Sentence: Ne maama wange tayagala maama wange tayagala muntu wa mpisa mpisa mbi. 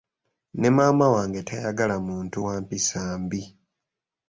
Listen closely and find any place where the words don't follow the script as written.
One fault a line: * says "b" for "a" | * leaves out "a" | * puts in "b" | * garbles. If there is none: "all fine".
* leaves out "maama wange tayagala"
* leaves out "mpisa"